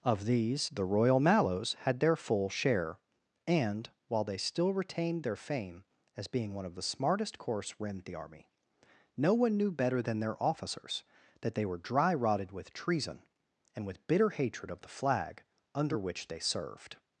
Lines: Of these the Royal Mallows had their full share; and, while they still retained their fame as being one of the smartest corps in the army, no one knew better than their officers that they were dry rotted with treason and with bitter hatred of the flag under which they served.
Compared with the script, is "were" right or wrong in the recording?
right